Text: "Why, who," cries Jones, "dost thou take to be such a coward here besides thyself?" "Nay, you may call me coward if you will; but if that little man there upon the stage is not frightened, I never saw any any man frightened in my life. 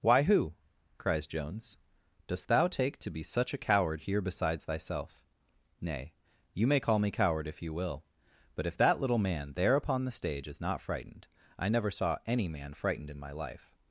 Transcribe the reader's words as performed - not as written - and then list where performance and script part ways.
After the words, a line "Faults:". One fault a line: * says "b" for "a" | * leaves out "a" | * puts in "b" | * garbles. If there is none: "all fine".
"Why, who," cries Jones, "dost thou take to be such a coward here besides thyself?" "Nay, you may call me coward if you will; but if that little man there upon the stage is not frightened, I never saw any man frightened in my life.
Faults:
* leaves out "any"